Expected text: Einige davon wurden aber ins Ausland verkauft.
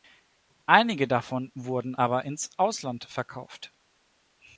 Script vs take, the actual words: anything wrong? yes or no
no